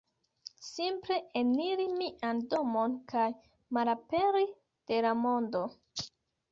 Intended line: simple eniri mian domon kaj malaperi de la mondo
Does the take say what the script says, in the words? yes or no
yes